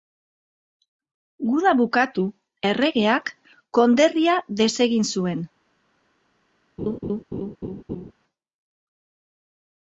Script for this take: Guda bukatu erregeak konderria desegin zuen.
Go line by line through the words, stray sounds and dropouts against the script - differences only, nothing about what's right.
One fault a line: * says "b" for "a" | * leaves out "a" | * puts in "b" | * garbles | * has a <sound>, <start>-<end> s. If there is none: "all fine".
* has a laugh, 6.8-8.1 s